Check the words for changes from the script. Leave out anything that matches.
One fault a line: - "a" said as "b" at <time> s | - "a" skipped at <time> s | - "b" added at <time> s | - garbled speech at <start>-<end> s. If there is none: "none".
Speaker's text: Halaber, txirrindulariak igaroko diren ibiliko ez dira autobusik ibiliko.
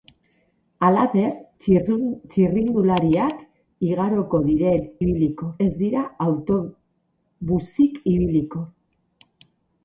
none